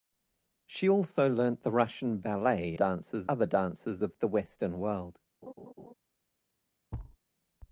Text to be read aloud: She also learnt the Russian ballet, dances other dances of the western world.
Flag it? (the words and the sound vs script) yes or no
yes